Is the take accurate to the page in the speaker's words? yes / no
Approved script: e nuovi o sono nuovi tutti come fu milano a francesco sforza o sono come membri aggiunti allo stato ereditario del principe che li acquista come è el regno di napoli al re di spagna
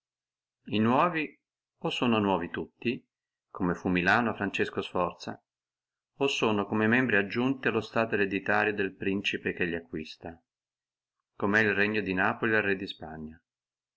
yes